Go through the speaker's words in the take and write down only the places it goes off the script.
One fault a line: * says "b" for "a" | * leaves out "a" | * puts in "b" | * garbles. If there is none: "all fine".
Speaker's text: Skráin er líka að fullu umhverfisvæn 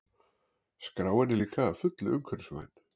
all fine